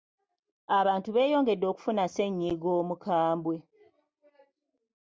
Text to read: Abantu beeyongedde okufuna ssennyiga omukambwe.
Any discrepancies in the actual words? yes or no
no